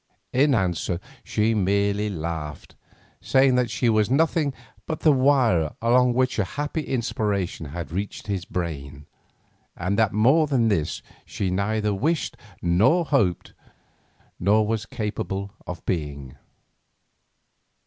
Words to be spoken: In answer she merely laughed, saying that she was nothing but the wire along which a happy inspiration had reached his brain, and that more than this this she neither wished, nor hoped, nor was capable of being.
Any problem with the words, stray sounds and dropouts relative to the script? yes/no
yes